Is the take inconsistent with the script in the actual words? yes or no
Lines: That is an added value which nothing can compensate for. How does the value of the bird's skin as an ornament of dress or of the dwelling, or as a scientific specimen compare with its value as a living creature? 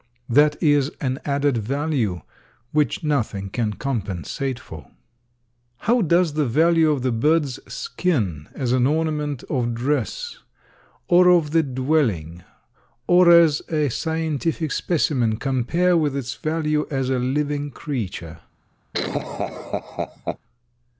no